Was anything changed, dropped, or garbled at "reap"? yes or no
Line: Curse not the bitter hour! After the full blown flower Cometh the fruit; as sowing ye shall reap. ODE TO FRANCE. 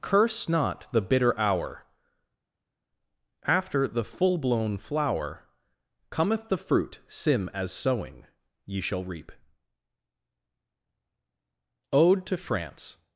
no